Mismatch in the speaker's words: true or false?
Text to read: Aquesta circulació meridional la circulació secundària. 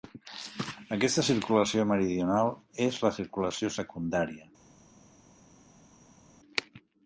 true